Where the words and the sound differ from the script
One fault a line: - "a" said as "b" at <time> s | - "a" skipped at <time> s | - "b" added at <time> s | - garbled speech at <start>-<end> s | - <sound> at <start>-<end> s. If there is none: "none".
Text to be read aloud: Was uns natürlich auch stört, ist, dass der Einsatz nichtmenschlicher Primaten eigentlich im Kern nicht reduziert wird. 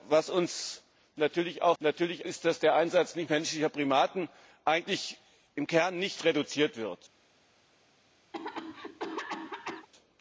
- "stört" said as "natürlich" at 1.8 s
- cough at 8.3-9.9 s